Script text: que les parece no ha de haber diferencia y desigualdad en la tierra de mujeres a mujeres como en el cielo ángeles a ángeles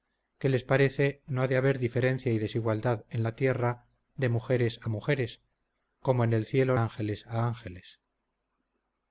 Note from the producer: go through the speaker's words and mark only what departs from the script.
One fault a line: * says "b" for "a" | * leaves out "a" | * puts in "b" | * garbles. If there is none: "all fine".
all fine